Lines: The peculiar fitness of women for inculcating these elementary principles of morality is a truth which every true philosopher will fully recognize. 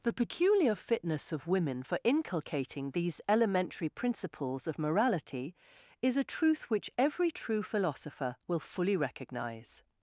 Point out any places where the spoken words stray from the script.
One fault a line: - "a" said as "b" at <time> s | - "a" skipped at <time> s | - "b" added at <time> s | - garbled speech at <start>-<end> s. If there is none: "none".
none